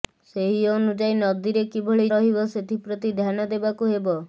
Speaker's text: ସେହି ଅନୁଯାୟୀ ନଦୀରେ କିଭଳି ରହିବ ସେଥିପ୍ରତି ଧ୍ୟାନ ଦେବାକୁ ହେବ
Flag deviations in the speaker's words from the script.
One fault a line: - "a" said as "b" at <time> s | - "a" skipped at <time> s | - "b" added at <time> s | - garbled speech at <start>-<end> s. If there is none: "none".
none